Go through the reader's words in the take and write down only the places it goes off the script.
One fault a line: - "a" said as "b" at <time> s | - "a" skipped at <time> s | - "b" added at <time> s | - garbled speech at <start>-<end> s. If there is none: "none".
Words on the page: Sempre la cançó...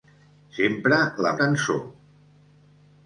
none